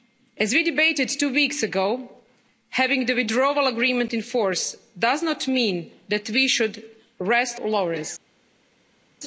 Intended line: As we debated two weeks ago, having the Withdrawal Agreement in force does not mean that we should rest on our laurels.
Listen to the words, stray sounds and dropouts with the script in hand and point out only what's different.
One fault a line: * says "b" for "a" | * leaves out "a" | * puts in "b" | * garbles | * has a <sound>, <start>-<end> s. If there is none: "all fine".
* leaves out "on our"